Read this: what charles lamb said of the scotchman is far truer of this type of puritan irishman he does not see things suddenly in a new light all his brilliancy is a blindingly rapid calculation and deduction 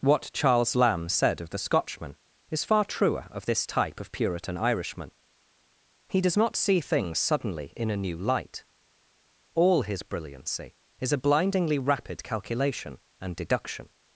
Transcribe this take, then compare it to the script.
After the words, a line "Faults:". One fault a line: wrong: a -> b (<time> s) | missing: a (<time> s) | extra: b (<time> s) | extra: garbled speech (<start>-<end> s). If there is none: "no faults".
what charles lamb said of the scotchman is far truer of this type of puritan irishman he does not see things suddenly in a new light all his brilliancy is a blindingly rapid calculation and deduction
Faults:
no faults